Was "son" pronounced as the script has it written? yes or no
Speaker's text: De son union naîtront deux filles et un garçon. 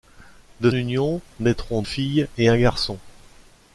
no